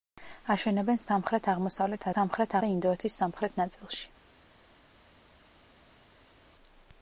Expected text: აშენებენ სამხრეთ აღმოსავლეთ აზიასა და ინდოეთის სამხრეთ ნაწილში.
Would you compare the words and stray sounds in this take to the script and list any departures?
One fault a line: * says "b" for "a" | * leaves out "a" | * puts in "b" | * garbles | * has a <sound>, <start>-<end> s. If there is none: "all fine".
* says "სამხრეთ" for "აზიასა"